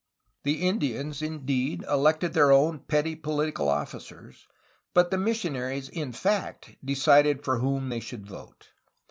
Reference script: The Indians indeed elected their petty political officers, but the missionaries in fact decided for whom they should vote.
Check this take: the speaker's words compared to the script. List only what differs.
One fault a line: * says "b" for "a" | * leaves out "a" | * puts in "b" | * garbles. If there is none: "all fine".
* puts in "own"